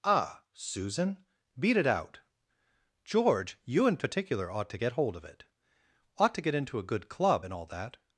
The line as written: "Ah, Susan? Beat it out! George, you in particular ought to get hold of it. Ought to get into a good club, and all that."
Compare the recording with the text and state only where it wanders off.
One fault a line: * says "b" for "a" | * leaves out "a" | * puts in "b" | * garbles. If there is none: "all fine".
all fine